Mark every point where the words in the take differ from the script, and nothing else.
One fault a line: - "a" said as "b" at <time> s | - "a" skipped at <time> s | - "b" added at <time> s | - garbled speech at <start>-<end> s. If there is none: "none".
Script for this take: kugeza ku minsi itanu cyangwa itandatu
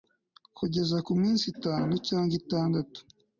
none